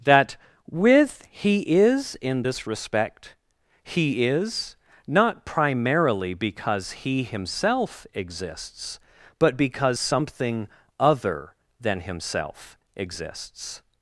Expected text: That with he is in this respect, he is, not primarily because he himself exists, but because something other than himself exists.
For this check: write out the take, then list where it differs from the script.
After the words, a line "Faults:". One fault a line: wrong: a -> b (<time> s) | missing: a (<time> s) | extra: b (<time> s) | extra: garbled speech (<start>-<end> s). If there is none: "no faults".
That with he is in this respect, he is, not primarily because he himself exists, but because something other than himself exists.
Faults:
no faults